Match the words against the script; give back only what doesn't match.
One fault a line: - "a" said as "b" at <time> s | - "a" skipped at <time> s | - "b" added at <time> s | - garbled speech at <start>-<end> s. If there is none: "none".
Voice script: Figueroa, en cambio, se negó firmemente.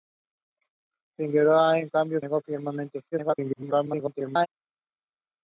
- "se" skipped at 2.2 s
- garbled speech at 3.1-4.5 s